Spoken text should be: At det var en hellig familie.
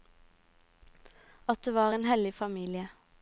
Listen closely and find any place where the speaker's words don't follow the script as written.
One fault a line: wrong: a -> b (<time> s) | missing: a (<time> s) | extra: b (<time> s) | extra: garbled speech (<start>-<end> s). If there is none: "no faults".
no faults